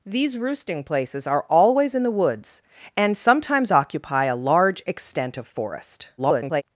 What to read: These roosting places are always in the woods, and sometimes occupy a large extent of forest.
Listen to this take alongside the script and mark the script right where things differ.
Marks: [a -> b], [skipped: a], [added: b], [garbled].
These roosting places are always in the woods, and sometimes occupy a large extent of forest. [garbled]